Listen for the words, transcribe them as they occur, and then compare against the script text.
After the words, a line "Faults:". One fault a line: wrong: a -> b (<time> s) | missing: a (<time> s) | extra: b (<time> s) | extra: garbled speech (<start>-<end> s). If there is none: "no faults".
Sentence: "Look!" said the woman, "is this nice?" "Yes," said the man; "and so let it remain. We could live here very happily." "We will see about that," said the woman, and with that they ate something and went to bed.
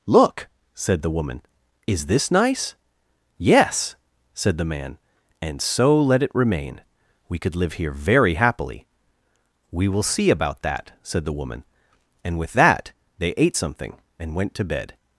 "Look!" said the woman, "is this nice?" "Yes," said the man; "and so let it remain. We could live here very happily." "We will see about that," said the woman, and with that they ate something and went to bed.
Faults:
no faults